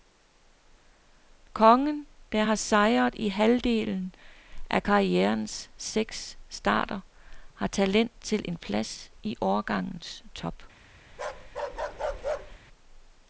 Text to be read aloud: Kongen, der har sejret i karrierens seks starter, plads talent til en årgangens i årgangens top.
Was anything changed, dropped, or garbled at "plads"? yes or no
yes